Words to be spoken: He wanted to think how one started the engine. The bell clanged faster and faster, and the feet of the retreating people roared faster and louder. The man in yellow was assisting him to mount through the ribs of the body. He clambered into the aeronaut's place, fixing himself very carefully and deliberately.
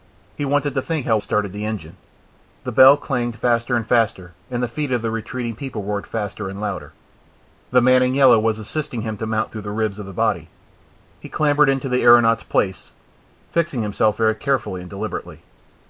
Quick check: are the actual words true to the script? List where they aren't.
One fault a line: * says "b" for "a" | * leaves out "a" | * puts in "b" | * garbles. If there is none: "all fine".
* leaves out "one"